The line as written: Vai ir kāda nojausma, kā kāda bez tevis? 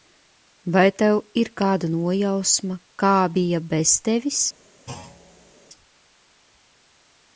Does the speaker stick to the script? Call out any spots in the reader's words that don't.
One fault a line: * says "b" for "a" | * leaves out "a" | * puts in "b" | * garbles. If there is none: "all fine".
* puts in "tev"
* says "bija" for "kāda"